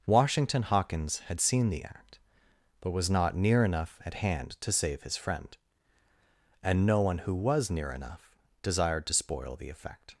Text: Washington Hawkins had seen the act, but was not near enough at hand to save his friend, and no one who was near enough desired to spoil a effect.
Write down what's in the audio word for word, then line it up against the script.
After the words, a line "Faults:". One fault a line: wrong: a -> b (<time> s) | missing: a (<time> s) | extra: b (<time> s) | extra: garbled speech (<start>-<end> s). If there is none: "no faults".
Washington Hawkins had seen the act, but was not near enough at hand to save his friend, and no one who was near enough desired to spoil the effect.
Faults:
wrong: a -> the (9.6 s)